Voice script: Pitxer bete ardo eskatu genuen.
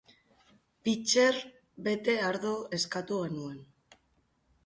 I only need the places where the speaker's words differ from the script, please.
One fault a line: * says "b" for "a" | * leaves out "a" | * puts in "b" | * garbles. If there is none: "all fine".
all fine